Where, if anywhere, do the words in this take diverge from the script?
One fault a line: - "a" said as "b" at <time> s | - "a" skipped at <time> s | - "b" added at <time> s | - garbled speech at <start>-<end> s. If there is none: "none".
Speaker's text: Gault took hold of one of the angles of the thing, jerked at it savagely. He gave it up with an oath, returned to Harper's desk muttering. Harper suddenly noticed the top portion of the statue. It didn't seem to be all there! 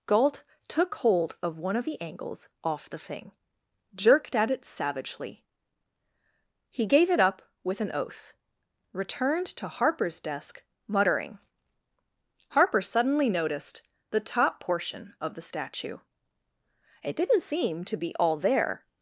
- "of" said as "off" at 2.6 s